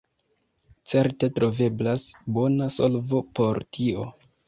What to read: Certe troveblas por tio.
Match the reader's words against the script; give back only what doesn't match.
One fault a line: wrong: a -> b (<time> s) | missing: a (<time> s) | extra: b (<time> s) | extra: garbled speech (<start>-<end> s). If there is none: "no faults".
extra: bona solvo (2.4 s)